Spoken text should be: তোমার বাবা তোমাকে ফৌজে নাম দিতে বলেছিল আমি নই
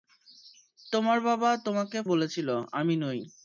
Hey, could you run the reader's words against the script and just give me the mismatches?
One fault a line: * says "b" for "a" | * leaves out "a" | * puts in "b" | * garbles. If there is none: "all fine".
* leaves out "ফৌজে নাম দিতে"